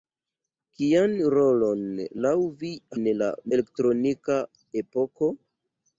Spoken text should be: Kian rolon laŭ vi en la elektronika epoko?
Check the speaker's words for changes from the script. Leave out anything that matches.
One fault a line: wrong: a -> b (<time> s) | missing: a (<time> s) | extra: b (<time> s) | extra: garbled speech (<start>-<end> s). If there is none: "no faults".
no faults